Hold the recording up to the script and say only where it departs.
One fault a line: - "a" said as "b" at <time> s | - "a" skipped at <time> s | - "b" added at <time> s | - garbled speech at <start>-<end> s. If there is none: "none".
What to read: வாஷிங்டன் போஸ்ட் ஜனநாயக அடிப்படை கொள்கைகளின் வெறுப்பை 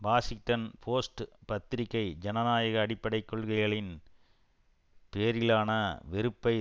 - "பத்திரிகை" added at 1.4 s
- "பேரிலான" added at 5.1 s